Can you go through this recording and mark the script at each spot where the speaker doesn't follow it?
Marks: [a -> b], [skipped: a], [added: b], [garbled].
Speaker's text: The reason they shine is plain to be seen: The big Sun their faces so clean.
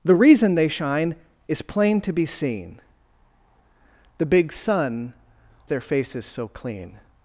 The reason they shine is plain to be seen: The big Sun their faces so clean.